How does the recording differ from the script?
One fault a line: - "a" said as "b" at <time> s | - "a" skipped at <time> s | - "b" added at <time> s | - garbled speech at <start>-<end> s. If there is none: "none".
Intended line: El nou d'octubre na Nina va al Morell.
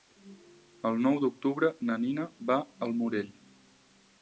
none